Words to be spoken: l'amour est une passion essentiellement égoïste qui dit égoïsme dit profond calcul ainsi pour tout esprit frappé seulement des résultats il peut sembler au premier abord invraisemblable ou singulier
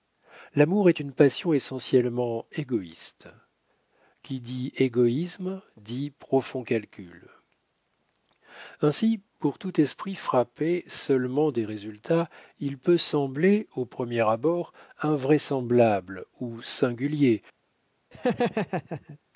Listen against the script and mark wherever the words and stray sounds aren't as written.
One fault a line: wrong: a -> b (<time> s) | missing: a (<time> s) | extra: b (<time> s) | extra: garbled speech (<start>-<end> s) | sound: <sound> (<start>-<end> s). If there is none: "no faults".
sound: laugh (18.1-19.2 s)